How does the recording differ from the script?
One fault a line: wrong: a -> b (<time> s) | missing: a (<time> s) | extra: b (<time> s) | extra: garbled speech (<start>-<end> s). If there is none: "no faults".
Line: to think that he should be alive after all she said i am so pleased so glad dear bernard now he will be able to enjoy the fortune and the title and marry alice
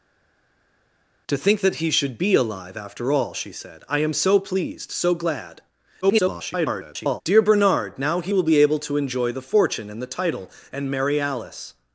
extra: garbled speech (6.0-7.2 s)